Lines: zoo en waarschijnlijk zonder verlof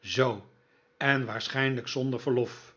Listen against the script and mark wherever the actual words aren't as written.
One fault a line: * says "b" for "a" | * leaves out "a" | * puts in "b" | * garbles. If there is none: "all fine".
all fine